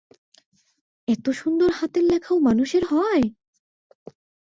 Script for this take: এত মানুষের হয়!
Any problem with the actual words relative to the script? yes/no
yes